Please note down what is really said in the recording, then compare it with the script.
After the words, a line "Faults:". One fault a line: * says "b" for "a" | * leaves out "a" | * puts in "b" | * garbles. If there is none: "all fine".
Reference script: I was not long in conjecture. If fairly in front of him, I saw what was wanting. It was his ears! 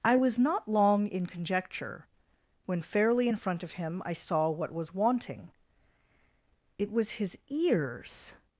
I was not long in conjecture. When fairly in front of him, I saw what was wanting. It was his ears!
Faults:
* says "When" for "If"